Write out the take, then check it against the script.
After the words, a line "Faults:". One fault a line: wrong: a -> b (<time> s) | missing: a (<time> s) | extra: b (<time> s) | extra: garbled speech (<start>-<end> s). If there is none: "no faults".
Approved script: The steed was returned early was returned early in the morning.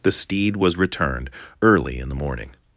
The steed was returned early in the morning.
Faults:
missing: was returned early (2.0 s)